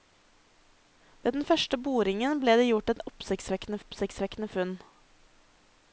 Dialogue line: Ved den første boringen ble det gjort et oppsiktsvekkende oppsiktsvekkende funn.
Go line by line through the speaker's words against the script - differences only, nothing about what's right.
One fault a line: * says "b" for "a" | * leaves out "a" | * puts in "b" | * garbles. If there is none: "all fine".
all fine